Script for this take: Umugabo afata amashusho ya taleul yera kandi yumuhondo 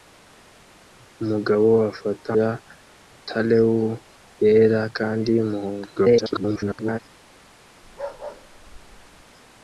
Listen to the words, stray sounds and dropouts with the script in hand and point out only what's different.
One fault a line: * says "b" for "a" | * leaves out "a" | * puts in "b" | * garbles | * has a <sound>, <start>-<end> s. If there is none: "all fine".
* leaves out "amashusho"
* garbles
* has a bark, 7.8-9.2 s